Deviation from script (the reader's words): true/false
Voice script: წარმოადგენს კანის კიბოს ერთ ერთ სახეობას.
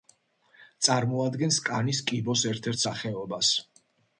false